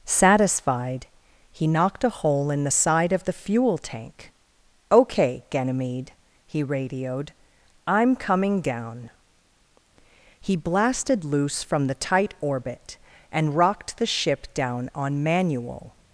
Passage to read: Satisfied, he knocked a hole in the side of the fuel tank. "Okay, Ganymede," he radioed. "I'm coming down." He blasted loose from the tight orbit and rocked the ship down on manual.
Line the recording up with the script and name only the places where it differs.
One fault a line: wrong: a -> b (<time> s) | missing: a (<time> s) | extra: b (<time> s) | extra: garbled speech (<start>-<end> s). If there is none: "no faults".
no faults